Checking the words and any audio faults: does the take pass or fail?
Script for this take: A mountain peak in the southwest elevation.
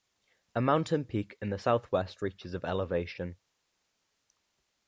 fail